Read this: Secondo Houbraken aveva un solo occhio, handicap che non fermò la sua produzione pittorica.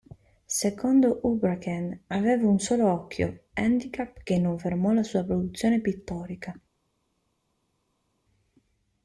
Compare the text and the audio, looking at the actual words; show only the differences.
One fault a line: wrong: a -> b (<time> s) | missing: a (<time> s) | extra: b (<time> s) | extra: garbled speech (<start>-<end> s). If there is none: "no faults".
no faults